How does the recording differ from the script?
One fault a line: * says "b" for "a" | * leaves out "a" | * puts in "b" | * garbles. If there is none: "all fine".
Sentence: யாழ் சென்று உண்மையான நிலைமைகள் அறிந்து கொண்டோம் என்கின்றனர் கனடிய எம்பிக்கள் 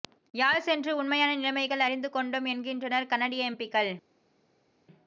all fine